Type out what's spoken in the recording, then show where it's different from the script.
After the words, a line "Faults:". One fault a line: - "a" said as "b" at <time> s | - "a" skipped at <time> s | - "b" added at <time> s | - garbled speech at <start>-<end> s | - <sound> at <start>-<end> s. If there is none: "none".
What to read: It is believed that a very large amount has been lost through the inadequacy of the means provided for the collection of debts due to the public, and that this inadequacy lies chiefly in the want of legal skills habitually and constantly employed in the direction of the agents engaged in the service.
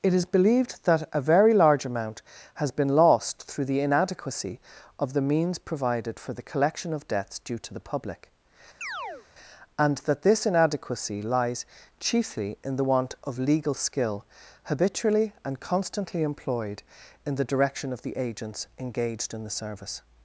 It is believed that a very large amount has been lost through the inadequacy of the means provided for the collection of debts due to the public, and that this inadequacy lies chiefly in the want of legal skill habitually and constantly employed in the direction of the agents engaged in the service.
Faults:
- chirp at 8.8-9.3 s
- "skills" said as "skill" at 13.8 s